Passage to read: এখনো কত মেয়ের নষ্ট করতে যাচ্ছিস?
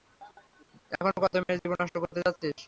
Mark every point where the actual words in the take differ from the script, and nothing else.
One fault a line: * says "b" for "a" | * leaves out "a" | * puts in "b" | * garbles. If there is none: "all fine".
* puts in "জীবন"